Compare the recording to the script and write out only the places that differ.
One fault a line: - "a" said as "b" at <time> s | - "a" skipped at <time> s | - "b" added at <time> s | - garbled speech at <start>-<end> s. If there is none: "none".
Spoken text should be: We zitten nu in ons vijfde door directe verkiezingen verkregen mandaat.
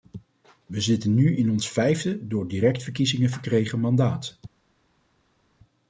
none